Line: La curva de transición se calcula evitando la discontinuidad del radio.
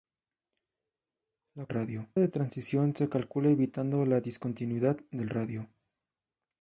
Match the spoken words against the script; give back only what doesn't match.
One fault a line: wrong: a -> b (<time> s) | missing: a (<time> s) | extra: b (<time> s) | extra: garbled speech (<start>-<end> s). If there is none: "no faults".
wrong: curva -> radio (1.7 s)